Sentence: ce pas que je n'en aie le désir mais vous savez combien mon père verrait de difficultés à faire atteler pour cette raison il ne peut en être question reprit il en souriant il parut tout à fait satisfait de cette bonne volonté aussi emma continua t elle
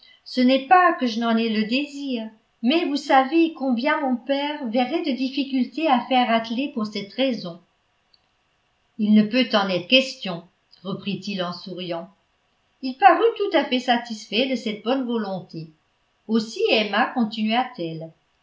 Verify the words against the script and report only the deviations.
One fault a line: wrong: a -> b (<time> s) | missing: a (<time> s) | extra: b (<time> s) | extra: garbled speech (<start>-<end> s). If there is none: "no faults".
extra: n'est (0.4 s)